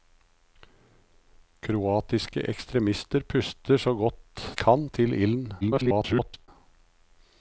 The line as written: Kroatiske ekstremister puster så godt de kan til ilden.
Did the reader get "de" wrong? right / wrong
wrong